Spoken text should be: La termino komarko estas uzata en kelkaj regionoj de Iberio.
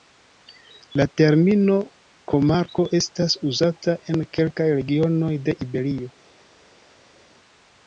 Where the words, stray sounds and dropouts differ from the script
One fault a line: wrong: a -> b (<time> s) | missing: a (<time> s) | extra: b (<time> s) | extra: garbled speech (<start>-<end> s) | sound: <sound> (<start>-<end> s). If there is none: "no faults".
no faults